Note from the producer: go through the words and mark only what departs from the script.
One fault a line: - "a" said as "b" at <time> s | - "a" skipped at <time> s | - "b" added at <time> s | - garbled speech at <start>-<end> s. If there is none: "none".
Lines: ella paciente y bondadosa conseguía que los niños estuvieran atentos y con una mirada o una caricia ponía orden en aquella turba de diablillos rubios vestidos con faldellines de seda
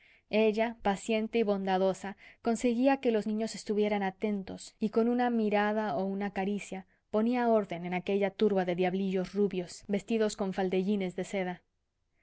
none